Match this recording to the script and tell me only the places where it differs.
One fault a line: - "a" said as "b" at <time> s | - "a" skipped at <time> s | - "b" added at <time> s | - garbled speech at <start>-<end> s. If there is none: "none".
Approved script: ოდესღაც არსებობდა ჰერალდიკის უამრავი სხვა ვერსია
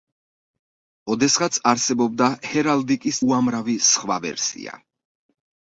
none